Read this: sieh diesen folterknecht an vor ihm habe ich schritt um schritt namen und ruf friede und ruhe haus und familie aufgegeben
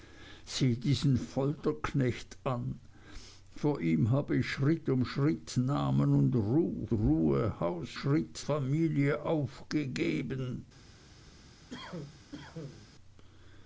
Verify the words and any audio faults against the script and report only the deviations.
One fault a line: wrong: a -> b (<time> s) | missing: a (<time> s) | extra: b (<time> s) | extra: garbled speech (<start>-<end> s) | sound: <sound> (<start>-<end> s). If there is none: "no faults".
missing: friede und (6.9 s)
wrong: und -> schritt (7.9 s)
sound: cough (11.7-12.9 s)